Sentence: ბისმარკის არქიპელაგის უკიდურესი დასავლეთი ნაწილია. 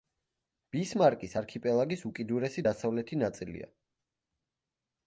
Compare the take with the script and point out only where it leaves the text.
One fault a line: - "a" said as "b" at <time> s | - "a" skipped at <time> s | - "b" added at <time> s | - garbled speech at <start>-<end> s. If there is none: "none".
none